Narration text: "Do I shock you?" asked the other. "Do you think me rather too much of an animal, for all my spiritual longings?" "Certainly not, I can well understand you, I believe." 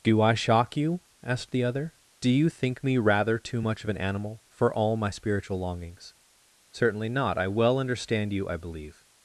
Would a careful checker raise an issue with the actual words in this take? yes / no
yes